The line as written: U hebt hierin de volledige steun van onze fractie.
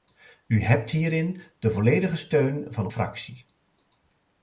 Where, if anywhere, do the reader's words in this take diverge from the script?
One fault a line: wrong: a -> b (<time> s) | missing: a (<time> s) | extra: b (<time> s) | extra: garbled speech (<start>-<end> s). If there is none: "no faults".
missing: onze (2.9 s)